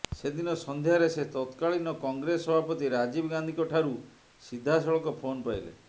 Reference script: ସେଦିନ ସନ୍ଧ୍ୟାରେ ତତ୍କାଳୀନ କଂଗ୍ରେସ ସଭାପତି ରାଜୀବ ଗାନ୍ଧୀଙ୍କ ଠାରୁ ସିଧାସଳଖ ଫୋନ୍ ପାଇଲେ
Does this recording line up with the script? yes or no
no